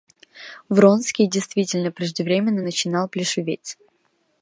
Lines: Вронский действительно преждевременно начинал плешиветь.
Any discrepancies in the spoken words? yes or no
no